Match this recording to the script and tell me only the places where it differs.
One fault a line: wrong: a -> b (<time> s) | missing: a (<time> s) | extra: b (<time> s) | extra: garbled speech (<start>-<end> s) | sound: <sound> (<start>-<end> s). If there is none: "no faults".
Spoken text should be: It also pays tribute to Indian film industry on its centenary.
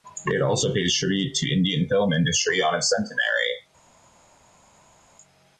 no faults